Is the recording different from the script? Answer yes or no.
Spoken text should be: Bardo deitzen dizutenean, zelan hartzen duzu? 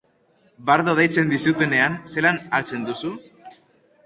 no